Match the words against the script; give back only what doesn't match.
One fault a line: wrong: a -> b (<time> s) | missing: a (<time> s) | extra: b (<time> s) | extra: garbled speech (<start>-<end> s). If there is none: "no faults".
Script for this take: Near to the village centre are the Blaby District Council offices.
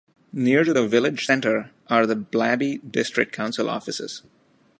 no faults